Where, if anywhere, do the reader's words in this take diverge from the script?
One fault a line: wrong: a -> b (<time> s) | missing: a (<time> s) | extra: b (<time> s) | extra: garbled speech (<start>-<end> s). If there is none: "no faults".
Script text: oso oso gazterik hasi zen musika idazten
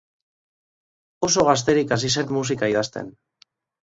missing: oso (1.4 s)